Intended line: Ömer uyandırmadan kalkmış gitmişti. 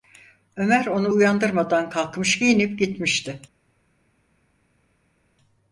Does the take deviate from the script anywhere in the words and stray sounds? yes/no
yes